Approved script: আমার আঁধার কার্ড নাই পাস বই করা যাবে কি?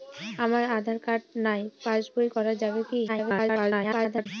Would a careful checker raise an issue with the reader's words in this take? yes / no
yes